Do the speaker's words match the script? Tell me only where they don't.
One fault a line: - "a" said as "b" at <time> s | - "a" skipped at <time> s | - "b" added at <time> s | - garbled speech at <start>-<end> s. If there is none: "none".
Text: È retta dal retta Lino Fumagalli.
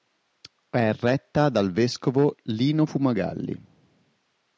- "retta" said as "vescovo" at 1.7 s